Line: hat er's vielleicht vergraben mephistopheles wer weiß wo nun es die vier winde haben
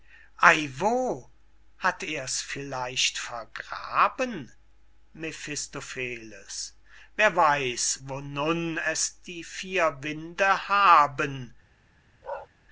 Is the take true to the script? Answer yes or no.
yes